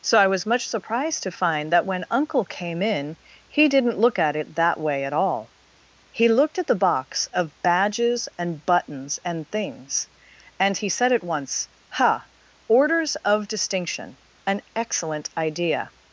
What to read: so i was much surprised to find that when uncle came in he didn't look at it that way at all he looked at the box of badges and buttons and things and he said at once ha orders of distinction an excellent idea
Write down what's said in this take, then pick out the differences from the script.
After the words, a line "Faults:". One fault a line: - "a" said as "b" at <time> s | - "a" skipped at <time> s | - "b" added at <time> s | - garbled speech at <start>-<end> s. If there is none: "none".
so i was much surprised to find that when uncle came in he didn't look at it that way at all he looked at the box of badges and buttons and things and he said at once ha orders of distinction an excellent idea
Faults:
none